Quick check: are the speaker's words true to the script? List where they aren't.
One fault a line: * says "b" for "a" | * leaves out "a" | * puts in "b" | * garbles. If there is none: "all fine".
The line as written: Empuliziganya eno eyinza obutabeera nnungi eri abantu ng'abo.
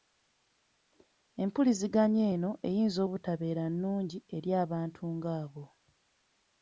all fine